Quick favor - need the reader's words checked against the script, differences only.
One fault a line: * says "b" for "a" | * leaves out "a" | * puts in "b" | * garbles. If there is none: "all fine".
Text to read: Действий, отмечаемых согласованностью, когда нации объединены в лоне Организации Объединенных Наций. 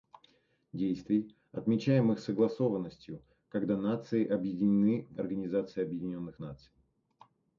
* leaves out "лоне"